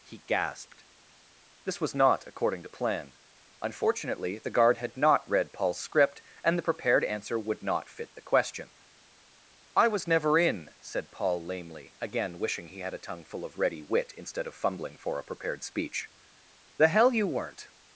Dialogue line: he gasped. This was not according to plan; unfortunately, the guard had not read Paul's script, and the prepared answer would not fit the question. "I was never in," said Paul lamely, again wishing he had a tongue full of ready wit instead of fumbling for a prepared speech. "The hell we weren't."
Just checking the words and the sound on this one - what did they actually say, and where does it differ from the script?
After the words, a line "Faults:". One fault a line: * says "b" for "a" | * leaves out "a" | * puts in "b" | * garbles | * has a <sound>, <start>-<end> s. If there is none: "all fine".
he gasped. This was not according to plan; unfortunately, the guard had not read Paul's script, and the prepared answer would not fit the question. "I was never in," said Paul lamely, again wishing he had a tongue full of ready wit instead of fumbling for a prepared speech. "The hell you weren't."
Faults:
* says "you" for "we"